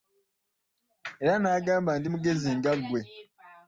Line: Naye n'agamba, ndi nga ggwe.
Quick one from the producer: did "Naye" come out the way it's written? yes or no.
no